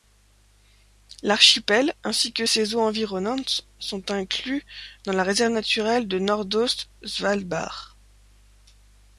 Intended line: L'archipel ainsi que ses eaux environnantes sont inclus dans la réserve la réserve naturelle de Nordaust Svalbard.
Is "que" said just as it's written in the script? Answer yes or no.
yes